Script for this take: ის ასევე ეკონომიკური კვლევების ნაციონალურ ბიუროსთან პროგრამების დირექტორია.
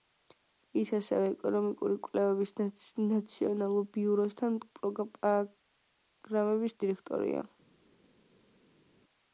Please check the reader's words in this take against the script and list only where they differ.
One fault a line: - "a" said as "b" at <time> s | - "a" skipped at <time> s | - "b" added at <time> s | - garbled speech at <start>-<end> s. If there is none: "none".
none